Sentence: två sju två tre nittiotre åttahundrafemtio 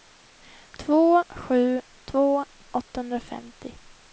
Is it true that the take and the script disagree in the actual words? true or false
true